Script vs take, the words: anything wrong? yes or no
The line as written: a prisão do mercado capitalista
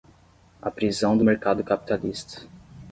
no